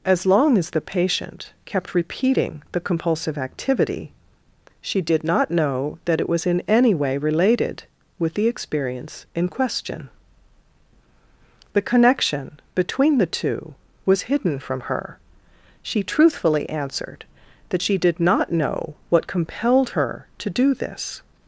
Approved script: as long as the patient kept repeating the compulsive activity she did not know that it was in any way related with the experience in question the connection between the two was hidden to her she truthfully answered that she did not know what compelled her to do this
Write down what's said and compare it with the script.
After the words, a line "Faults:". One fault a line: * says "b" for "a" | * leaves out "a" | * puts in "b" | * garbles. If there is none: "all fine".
as long as the patient kept repeating the compulsive activity she did not know that it was in any way related with the experience in question the connection between the two was hidden from her she truthfully answered that she did not know what compelled her to do this
Faults:
* says "from" for "to"